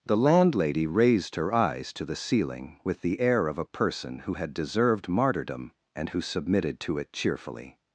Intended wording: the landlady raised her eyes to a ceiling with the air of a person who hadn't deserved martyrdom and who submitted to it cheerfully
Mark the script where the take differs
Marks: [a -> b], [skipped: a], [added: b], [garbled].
the landlady raised her eyes to [a -> the] ceiling with the air of a person who [hadn't -> had] deserved martyrdom and who submitted to it cheerfully